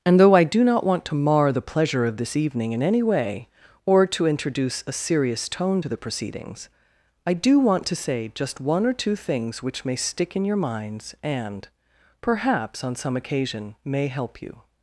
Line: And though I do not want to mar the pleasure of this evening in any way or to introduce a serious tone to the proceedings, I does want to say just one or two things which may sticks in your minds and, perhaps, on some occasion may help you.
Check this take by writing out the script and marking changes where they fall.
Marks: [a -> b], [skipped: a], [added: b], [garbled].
And though I do not want to mar the pleasure of this evening in any way or to introduce a serious tone to the proceedings, I [does -> do] want to say just one or two things which may [sticks -> stick] in your minds and, perhaps, on some occasion may help you.